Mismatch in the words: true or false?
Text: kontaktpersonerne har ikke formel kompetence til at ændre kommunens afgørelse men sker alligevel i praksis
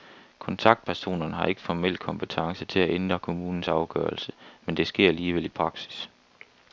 true